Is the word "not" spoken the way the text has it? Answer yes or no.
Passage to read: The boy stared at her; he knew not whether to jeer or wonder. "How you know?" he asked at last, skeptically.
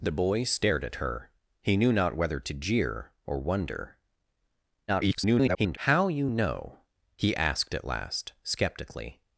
yes